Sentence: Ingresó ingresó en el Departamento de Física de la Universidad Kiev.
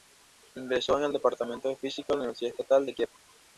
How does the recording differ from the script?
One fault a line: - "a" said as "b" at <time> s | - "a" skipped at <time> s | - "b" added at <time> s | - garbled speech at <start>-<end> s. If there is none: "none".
- "ingresó" skipped at 1.0 s
- "Estatal de" added at 2.5 s